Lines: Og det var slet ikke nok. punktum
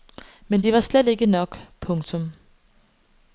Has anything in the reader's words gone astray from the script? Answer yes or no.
yes